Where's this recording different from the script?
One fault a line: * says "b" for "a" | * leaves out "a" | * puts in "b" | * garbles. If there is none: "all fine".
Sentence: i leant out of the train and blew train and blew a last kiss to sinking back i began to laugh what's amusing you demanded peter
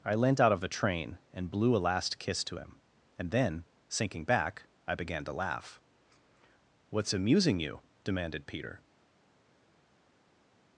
* leaves out "train and blew"
* puts in "him and then"